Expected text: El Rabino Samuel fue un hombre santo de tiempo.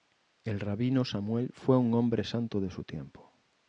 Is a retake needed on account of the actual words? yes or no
yes